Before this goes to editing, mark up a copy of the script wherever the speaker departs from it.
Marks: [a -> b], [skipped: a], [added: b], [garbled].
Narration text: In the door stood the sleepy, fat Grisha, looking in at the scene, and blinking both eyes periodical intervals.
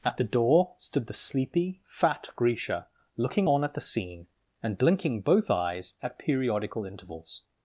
[In -> At] the door stood the sleepy, fat Grisha, looking [in -> on] at the scene, and blinking both eyes [added: at] periodical intervals.